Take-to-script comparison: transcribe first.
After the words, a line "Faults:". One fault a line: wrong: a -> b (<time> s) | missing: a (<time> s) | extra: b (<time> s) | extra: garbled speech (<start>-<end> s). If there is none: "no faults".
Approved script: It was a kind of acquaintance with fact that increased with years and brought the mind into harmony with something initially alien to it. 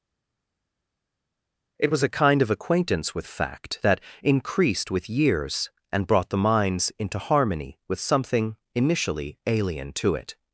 It was a kind of acquaintance with fact that increased with years and brought the minds into harmony with something initially alien to it.
Faults:
wrong: mind -> minds (6.4 s)